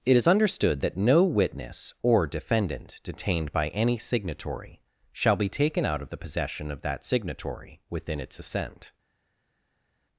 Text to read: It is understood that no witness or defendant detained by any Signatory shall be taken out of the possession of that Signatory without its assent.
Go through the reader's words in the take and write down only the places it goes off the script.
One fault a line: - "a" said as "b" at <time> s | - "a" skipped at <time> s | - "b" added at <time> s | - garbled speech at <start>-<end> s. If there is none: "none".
- "without" said as "within" at 7.9 s